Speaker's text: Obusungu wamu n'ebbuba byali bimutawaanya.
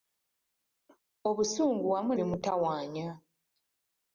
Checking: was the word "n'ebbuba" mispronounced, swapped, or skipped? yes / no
yes